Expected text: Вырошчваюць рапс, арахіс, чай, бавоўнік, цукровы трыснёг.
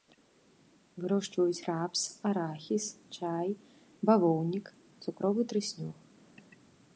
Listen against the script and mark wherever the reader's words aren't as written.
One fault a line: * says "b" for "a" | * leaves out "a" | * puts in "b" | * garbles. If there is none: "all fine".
all fine